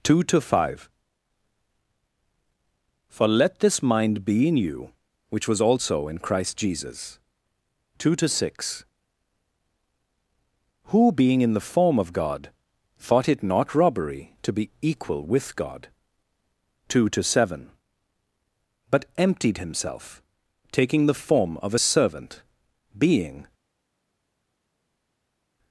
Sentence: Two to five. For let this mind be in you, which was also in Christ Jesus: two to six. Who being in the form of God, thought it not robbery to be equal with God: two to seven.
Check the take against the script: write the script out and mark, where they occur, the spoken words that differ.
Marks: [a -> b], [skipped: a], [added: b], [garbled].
Two to five. For let this mind be in you, which was also in Christ Jesus: two to six. Who being in the form of God, thought it not robbery to be equal with God: two to seven. [added: But emptied himself taking the form of a servant being]